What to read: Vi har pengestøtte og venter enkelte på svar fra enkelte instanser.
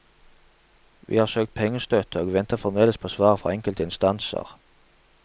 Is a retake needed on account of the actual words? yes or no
yes